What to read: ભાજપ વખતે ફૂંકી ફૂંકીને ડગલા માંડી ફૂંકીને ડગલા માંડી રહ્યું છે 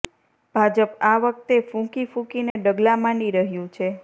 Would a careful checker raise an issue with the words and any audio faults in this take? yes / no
yes